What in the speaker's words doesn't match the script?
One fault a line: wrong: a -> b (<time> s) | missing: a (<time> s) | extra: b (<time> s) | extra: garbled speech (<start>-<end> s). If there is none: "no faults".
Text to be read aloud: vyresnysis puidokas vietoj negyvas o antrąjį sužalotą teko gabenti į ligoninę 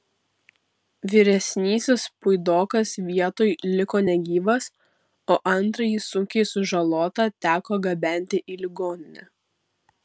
extra: liko (3.8 s)
extra: sunkiai (6.1 s)